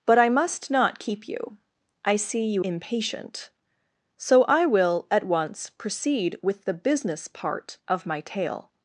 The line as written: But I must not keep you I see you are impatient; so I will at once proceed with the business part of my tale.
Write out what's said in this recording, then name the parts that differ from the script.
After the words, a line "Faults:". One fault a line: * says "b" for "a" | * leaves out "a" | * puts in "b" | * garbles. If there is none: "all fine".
But I must not keep you I see you impatient; so I will at once proceed with the business part of my tale.
Faults:
* leaves out "are"